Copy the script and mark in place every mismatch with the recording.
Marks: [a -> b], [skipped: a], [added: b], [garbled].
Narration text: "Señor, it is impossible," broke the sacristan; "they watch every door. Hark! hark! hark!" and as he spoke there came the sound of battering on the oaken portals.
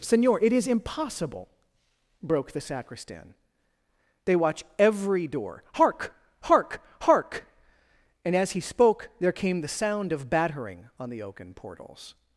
"Señor, it is impossible," broke the sacristan; "they watch every door. Hark! hark! hark!" and as he spoke there came the sound of battering on the oaken portals.